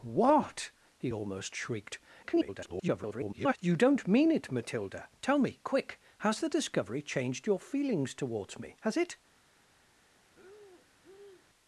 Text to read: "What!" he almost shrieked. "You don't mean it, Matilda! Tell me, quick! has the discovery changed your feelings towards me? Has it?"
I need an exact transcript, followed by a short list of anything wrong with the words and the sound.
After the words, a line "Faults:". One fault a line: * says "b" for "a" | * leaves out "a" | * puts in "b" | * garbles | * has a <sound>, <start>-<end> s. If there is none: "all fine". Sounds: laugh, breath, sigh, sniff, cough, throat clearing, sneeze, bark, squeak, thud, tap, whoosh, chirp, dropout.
"What!" he almost shrieked. [garbled] "You don't mean it, Matilda! Tell me, quick! has the discovery changed your feelings towards me? Has it?"
Faults:
* garbles
* has a breath, 10.3-11.5 s